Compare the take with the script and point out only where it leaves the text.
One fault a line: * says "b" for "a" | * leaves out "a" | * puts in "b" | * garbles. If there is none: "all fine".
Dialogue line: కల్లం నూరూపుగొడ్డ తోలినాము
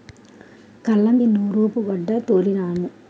all fine